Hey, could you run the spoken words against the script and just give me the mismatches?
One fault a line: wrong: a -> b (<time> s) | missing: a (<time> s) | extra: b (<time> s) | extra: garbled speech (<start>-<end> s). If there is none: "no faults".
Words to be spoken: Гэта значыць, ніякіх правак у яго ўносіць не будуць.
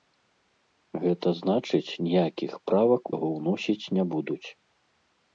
missing: у (3.0 s)